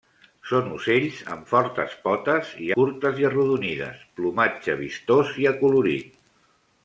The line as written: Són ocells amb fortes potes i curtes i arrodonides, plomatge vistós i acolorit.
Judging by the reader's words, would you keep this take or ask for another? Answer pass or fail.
pass